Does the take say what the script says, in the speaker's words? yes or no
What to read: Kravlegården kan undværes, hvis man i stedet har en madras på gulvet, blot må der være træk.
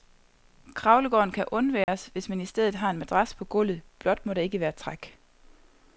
no